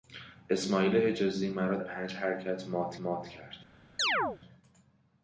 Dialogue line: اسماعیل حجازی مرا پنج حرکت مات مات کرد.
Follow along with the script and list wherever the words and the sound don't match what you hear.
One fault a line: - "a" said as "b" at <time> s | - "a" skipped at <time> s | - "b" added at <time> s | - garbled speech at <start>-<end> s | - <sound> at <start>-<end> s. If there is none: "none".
- chirp at 4.0-4.4 s